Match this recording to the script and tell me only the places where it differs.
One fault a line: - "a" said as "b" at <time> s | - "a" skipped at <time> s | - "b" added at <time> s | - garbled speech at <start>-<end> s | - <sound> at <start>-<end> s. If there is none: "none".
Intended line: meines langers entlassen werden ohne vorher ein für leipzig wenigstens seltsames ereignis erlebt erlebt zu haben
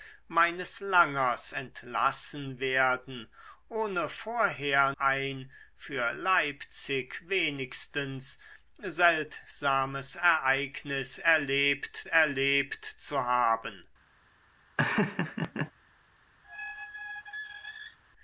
- laugh at 14.8-15.7 s
- squeak at 16.4-18.0 s